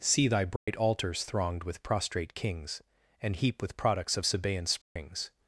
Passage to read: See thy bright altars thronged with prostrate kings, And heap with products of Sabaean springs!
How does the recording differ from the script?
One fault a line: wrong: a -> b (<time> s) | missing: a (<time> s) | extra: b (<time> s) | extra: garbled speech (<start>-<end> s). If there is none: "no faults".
no faults